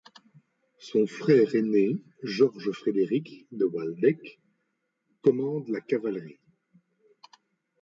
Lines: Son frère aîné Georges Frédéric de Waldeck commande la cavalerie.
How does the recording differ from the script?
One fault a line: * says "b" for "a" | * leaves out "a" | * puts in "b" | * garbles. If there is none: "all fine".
all fine